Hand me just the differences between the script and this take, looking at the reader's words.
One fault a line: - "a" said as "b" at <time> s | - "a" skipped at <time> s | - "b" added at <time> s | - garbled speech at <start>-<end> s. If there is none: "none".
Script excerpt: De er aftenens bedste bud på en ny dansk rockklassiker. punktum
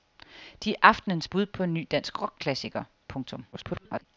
- "bedste" skipped at 1.3 s
- garbled speech at 3.5-4.0 s